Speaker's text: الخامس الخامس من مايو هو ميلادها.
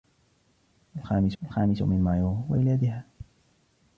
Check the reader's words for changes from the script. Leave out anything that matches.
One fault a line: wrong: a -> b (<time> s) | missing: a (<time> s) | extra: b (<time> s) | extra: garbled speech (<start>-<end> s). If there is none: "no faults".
no faults